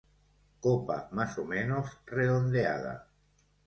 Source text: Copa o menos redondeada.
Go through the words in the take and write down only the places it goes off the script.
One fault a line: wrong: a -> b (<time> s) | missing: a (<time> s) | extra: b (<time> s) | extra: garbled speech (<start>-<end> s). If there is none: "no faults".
extra: más (1.1 s)